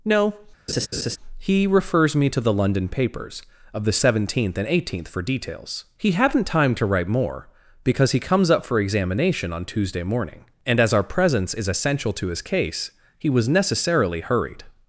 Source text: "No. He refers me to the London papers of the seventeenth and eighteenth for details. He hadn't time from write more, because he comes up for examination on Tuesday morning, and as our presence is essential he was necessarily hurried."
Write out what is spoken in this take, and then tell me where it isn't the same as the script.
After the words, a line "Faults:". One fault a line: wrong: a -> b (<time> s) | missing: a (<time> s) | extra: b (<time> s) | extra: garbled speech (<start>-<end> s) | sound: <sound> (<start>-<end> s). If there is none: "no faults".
"No. He refers me to the London papers of the seventeenth and eighteenth for details. He hadn't time to write more, because he comes up for examination on Tuesday morning, and as our presence is essential to his case he was necessarily hurried."
Faults:
sound: laugh (0.7-1.2 s)
wrong: from -> to (6.8 s)
extra: to his case (12.1 s)